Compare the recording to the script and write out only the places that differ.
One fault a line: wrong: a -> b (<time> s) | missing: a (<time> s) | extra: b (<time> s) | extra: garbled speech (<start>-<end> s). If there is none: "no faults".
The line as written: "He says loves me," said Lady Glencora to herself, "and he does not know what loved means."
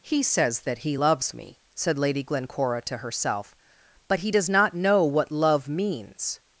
extra: that he (0.6 s)
wrong: and -> but (4.1 s)
wrong: loved -> love (5.3 s)